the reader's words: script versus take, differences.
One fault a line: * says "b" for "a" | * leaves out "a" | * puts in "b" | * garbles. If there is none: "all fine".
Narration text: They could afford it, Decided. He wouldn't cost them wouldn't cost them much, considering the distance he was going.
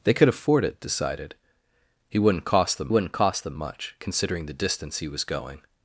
all fine